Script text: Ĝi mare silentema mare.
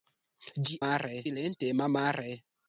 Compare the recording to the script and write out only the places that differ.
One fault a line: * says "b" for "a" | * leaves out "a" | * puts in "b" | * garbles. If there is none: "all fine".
all fine